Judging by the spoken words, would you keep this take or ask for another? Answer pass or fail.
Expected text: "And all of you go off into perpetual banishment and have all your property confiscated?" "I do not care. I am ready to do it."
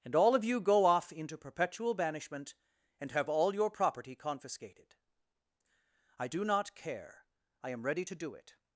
pass